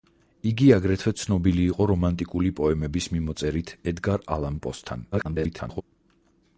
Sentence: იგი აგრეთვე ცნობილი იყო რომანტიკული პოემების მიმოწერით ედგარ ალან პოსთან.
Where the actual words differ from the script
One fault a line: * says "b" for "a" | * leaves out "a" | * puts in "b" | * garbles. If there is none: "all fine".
* garbles